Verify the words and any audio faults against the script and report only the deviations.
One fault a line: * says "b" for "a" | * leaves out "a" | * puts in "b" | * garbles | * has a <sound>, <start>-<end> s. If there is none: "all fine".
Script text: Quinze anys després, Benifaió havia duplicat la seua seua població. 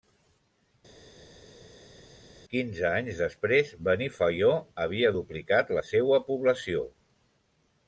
* leaves out "seua"